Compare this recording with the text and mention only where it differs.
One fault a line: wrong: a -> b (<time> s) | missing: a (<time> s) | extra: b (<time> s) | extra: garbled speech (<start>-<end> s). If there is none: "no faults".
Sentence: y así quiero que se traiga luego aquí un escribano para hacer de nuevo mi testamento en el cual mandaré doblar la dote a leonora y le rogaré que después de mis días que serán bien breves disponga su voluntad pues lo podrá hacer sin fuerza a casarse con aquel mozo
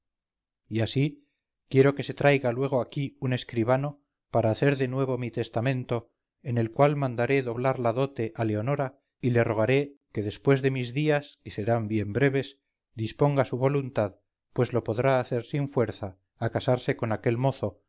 no faults